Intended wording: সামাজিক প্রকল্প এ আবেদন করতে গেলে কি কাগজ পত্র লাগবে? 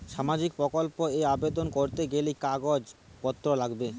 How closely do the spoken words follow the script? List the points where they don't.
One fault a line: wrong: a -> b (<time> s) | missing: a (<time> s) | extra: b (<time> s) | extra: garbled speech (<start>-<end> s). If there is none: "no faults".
missing: কি (2.3 s)